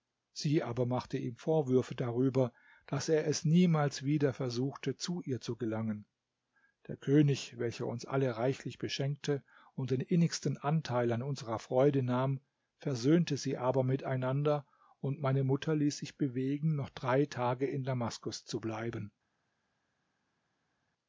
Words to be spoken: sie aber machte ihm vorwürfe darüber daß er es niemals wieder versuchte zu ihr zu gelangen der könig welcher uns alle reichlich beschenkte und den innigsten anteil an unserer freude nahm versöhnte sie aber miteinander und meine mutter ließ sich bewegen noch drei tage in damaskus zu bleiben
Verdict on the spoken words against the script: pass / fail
pass